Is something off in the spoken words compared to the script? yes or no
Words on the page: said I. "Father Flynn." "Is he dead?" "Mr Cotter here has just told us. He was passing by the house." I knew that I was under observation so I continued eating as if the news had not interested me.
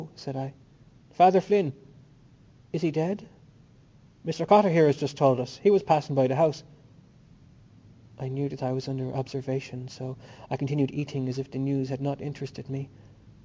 no